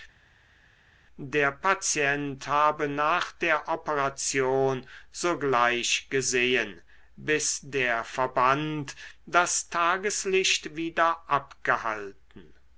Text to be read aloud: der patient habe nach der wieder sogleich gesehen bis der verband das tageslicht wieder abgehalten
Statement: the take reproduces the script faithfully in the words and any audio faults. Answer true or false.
false